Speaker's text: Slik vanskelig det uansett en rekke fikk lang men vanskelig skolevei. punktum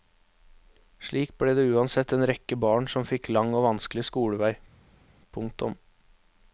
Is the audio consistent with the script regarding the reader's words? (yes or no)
no